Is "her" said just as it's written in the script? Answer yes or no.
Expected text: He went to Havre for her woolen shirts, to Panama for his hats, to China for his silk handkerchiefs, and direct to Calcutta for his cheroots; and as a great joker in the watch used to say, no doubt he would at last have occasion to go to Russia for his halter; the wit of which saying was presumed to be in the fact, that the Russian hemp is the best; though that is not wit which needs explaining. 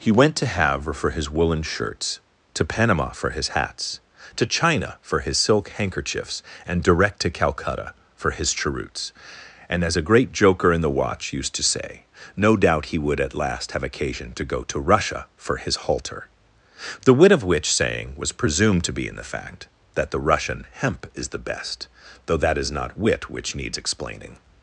no